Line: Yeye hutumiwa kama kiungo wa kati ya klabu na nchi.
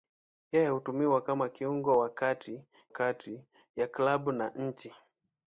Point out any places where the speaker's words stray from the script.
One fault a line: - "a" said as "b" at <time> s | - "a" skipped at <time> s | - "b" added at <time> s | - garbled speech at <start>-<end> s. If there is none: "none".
- "kati" added at 2.9 s